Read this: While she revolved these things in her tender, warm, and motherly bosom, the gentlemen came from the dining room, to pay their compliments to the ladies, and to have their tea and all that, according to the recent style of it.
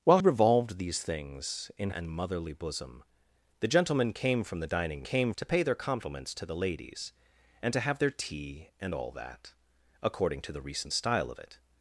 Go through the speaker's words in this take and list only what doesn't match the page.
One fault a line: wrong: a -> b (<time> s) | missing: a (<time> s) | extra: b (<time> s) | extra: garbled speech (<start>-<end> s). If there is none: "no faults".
missing: she (0.2 s)
missing: her tender warm (1.9 s)
wrong: room -> came (5.0 s)